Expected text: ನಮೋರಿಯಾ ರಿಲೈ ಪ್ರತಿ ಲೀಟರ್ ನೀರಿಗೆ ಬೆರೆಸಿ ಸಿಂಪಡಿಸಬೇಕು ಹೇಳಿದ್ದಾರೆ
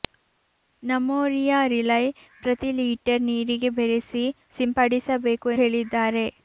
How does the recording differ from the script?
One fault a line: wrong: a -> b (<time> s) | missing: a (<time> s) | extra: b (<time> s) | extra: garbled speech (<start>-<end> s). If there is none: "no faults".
no faults